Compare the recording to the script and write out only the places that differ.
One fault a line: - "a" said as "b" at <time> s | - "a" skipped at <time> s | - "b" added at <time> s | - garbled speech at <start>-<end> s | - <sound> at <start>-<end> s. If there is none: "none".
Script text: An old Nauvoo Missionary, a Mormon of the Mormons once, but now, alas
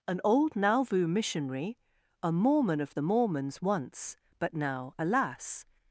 none